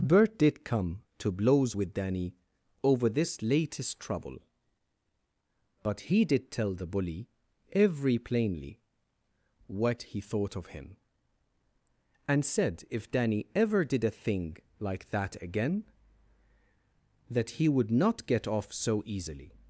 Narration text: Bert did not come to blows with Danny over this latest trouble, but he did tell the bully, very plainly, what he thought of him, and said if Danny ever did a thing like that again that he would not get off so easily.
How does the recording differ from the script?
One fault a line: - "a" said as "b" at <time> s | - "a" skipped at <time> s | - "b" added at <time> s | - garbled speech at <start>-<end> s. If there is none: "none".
- "not" skipped at 0.6 s
- "very" said as "every" at 7.7 s